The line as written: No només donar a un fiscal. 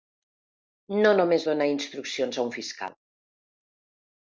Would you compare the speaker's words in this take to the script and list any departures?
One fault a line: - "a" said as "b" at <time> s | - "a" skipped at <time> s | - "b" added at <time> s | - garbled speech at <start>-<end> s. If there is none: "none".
- "instruccions" added at 1.7 s